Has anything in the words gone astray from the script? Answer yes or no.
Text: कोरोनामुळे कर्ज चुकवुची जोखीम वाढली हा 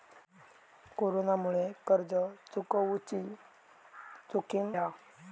yes